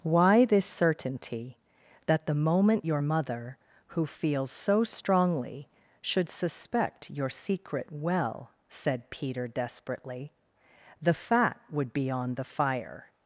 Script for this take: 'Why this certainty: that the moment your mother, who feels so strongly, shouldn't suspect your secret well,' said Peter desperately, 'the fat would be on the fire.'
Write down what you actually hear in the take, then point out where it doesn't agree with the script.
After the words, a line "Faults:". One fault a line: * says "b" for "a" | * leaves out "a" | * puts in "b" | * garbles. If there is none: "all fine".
'Why this certainty: that the moment your mother, who feels so strongly, should suspect your secret well,' said Peter desperately, 'the fat would be on the fire.'
Faults:
* says "should" for "shouldn't"